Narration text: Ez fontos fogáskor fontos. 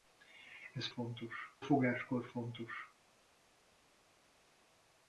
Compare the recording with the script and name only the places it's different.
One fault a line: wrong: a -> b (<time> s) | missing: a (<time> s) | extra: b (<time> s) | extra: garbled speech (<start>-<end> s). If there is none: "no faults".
no faults